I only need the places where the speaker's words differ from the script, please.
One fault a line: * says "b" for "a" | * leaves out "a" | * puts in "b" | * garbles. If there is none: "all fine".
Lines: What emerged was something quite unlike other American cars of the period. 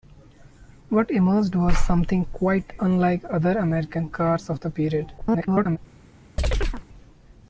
* garbles